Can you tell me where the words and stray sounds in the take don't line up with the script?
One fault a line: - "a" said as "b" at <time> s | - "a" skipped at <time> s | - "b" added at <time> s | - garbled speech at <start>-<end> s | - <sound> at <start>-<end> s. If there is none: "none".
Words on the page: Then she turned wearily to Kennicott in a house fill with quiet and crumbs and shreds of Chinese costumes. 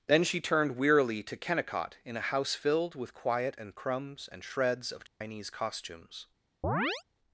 - "fill" said as "filled" at 2.5 s
- dropout at 5.1-5.2 s
- chirp at 6.6-7.0 s